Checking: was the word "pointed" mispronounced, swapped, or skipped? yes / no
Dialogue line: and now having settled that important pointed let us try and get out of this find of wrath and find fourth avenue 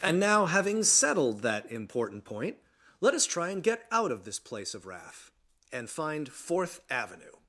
yes